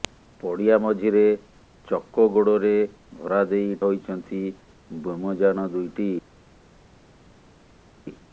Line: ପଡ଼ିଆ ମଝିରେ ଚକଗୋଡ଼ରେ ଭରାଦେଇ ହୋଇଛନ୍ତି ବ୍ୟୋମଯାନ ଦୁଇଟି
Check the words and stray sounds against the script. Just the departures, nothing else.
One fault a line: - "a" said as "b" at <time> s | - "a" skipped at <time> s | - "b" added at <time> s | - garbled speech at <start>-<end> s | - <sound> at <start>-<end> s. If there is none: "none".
none